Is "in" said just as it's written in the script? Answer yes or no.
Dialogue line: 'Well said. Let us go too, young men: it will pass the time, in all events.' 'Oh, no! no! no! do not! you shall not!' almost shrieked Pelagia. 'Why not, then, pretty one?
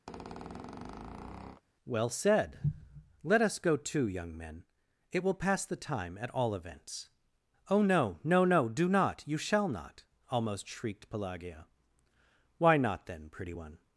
no